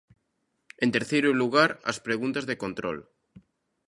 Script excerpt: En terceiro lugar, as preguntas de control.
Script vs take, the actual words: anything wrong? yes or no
no